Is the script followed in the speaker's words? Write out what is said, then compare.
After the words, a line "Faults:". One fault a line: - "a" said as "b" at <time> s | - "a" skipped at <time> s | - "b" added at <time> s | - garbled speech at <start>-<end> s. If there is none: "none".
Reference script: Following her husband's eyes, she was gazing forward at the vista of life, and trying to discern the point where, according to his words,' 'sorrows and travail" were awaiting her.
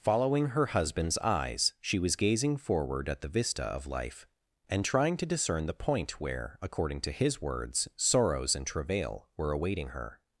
Following her husband's eyes, she was gazing forward at the vista of life, and trying to discern the point where, according to his words,' 'sorrows and travail" were awaiting her.
Faults:
none